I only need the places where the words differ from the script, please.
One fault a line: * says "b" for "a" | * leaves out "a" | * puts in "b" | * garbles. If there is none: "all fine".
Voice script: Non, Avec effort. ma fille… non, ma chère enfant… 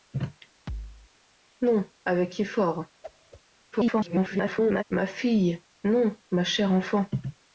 * garbles